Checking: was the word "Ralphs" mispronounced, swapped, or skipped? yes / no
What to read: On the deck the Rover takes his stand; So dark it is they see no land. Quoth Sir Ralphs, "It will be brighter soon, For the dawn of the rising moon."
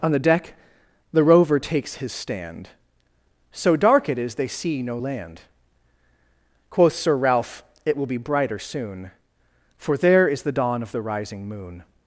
yes